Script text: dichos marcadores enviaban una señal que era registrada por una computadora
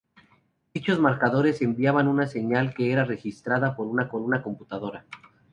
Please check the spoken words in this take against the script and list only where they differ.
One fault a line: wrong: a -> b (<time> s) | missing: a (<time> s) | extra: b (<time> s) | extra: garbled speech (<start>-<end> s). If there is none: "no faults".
extra: por una (4.1 s)